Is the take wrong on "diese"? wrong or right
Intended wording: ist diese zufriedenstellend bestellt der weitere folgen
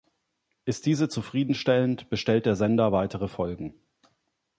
right